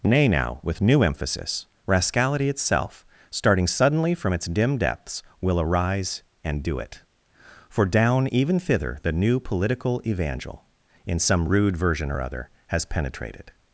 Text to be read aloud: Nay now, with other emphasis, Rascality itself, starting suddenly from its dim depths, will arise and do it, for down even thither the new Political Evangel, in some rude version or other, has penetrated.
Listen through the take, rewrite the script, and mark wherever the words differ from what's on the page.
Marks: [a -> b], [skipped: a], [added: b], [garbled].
Nay now, with [other -> new] emphasis, Rascality itself, starting suddenly from its dim depths, will arise and do it, for down even thither the new Political Evangel, in some rude version or other, has penetrated.